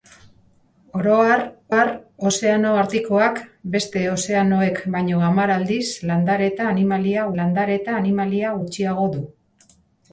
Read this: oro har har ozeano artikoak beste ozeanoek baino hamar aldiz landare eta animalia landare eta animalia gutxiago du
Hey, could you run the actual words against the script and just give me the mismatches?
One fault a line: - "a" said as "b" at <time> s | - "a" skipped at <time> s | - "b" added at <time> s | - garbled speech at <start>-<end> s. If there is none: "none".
none